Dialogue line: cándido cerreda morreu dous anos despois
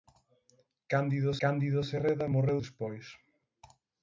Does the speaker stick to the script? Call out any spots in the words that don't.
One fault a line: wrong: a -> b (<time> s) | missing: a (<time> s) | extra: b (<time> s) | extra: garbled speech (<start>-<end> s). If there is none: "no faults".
extra: cándido (1.4 s)
missing: dous anos (2.6 s)